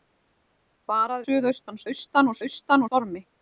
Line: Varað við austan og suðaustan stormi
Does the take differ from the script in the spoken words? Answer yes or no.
yes